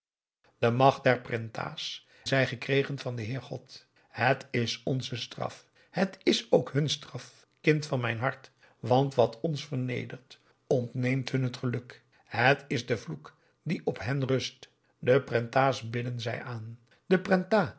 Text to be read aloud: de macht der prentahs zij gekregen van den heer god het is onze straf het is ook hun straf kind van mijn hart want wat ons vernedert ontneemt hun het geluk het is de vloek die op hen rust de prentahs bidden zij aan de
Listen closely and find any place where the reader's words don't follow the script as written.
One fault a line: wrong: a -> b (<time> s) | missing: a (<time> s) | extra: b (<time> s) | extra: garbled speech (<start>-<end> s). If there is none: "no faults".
no faults